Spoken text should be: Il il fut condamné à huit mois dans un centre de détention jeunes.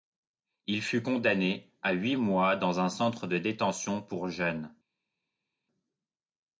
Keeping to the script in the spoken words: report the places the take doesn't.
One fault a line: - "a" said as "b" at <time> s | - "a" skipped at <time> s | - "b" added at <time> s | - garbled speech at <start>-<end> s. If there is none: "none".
- "il" skipped at 0.8 s
- "pour" added at 4.0 s